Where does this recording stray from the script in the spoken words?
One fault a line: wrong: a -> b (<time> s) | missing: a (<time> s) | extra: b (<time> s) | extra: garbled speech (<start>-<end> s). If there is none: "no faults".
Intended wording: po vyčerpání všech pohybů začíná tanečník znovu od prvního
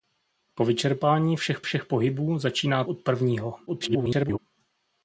extra: všech (1.6 s)
missing: tanečník znovu (2.8 s)
extra: garbled speech (3.7-4.4 s)